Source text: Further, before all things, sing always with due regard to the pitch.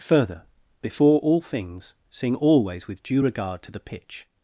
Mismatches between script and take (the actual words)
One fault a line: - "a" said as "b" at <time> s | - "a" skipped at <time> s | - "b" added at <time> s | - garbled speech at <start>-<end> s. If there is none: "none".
none